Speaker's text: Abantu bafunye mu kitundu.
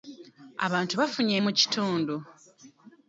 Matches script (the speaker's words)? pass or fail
pass